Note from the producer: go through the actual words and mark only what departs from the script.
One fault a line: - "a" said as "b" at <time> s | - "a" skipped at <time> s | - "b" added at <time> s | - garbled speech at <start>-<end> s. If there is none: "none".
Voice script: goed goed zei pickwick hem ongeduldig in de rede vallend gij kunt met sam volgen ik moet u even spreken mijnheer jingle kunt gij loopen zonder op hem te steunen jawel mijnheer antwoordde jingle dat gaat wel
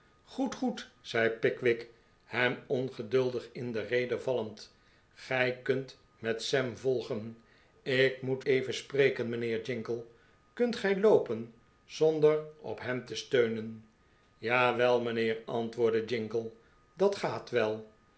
- "u" skipped at 8.4 s